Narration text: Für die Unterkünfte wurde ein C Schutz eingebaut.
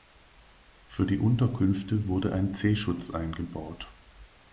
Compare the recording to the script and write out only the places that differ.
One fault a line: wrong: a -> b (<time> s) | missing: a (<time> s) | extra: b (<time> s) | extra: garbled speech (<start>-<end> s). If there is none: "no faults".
no faults